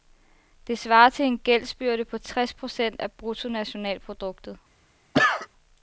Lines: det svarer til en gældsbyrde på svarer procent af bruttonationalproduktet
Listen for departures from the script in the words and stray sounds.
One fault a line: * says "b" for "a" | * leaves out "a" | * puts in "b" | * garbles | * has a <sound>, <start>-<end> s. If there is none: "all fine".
* says "tres" for "svarer"
* has a cough, 5.1-5.5 s